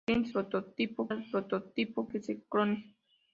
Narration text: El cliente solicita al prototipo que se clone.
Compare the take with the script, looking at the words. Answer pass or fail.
fail